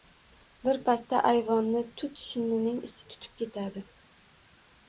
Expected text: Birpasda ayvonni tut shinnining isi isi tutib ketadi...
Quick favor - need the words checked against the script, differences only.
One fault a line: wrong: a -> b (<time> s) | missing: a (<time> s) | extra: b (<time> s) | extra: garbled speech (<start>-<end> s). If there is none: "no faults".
missing: isi (3.1 s)